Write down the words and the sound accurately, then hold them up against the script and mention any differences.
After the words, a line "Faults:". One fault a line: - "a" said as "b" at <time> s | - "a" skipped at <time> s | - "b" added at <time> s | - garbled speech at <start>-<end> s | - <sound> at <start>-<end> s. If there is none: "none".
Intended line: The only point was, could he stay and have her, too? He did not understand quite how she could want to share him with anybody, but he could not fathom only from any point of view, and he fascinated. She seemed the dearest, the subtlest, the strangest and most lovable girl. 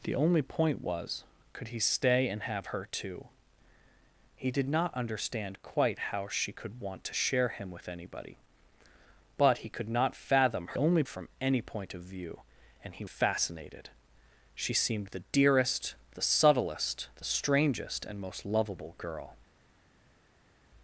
The only point was, could he stay and have her, too? He did not understand quite how she could want to share him with anybody, but he could not fathom only from any point of view, and he fascinated. She seemed the dearest, the subtlest, the strangest and most lovable girl.
Faults:
none